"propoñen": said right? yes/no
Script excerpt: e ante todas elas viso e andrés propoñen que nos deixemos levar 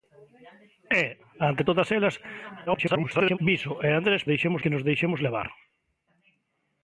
no